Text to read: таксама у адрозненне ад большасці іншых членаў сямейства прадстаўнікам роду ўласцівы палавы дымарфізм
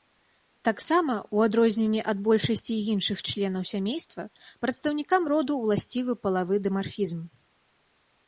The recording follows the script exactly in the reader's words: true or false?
true